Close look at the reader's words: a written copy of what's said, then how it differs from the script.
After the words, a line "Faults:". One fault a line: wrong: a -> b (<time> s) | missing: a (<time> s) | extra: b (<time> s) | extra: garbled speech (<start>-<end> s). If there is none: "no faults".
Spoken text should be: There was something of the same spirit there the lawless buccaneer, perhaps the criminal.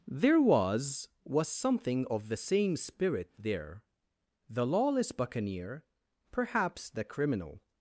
There was was something of the same spirit there the lawless buccaneer, perhaps the criminal.
Faults:
extra: was (1.2 s)